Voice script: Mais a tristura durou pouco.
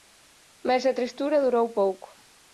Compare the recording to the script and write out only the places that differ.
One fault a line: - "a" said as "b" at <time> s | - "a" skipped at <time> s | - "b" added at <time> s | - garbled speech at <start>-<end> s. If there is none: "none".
none